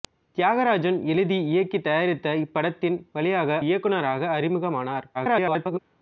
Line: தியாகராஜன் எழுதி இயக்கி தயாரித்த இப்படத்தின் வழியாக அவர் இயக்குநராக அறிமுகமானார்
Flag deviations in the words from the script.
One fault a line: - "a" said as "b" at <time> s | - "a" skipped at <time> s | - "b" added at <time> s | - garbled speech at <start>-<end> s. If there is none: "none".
- "அவர்" skipped at 3.6 s
- garbled speech at 5.1-5.8 s